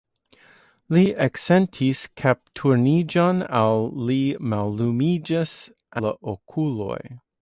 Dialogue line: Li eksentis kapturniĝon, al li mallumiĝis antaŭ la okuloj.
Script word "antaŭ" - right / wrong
wrong